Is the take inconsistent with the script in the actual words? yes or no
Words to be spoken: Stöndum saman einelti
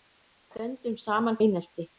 no